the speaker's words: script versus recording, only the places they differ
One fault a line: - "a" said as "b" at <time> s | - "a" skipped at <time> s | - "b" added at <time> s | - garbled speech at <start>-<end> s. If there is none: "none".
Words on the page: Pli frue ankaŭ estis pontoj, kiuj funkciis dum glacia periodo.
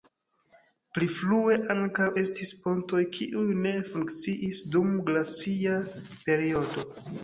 - "ne" added at 3.6 s